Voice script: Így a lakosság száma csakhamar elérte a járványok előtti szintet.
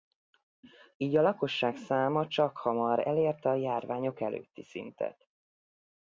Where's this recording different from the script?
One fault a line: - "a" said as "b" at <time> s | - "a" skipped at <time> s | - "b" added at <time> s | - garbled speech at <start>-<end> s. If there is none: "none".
none